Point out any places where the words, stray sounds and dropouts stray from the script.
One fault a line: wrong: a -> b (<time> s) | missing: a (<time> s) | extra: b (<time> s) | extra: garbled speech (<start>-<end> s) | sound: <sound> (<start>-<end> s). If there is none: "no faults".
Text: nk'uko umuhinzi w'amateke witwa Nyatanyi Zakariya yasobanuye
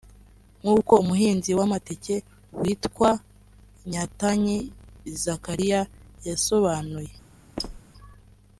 sound: squeak (7.6-7.8 s)